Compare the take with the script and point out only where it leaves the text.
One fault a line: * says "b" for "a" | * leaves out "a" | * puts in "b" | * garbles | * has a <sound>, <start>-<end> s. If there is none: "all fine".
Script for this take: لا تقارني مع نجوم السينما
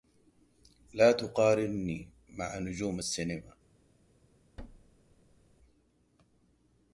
* has a thud, 4.6-5.6 s